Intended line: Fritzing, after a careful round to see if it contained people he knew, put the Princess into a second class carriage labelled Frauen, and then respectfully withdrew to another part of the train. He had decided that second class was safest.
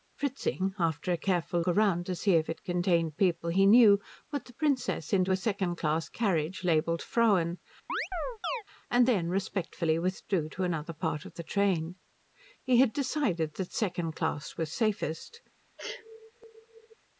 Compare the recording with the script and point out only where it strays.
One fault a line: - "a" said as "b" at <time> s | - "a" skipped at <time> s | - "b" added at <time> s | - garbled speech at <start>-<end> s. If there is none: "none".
none